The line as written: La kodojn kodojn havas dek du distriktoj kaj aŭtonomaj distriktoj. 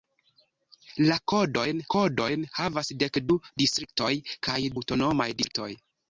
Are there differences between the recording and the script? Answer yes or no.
no